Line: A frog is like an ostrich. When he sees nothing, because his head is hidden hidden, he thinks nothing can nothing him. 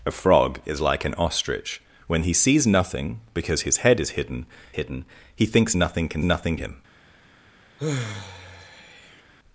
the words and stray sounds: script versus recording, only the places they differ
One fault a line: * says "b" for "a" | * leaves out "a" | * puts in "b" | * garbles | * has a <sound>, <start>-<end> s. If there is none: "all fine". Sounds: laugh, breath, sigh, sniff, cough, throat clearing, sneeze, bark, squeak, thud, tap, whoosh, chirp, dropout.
* has a sigh, 7.8-9.2 s